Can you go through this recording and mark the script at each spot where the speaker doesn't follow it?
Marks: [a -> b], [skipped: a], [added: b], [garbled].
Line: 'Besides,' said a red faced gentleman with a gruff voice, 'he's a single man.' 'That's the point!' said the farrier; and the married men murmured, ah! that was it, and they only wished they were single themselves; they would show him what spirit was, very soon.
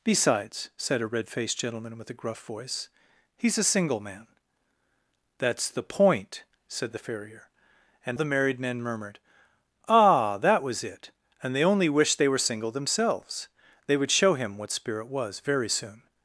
'Besides,' said a red faced gentleman with a gruff voice, 'he's a single man.' 'That's the point!' said the farrier; and the married men murmured, ah! that was it, and they only wished they were single themselves; they would show him what spirit was, very soon.